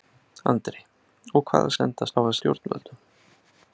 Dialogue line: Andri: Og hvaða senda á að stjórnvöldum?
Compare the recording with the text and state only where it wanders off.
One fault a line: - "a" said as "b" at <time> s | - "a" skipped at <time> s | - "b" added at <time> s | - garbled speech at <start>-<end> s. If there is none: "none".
none